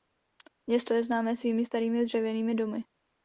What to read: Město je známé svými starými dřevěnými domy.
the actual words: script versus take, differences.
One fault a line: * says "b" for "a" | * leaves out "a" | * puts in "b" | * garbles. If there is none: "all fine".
all fine